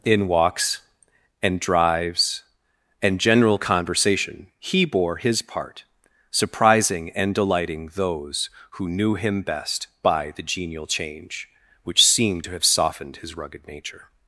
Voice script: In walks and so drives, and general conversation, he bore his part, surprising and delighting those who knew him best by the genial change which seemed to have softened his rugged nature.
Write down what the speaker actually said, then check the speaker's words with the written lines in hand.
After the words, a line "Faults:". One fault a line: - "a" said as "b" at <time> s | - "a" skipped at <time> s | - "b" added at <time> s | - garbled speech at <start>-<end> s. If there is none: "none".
In walks and drives, and general conversation, he bore his part, surprising and delighting those who knew him best by the genial change which seemed to have softened his rugged nature.
Faults:
- "so" skipped at 1.6 s